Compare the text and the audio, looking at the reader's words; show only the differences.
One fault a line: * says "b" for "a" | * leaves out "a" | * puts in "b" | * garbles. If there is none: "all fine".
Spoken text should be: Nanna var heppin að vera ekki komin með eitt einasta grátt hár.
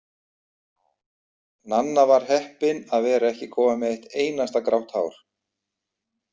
all fine